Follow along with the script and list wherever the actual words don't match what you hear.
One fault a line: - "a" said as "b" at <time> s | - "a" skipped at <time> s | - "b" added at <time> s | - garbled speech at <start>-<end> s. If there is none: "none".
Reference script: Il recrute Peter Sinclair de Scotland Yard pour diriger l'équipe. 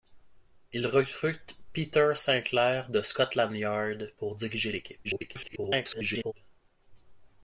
- garbled speech at 5.0-6.3 s